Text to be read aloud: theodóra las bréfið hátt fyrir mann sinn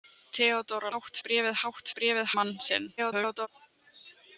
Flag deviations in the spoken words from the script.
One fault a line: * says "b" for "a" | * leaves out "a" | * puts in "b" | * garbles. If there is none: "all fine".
* says "hátt" for "las"
* says "bréfið" for "fyrir"
* garbles